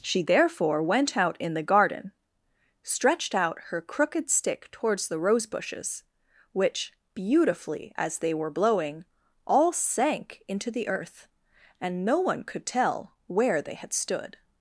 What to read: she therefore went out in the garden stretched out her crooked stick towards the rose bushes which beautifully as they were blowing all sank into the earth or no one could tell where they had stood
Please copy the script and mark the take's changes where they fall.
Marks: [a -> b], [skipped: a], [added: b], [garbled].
she therefore went out in the garden stretched out her crooked stick towards the rose bushes which beautifully as they were blowing all sank into the earth [or -> and] no one could tell where they had stood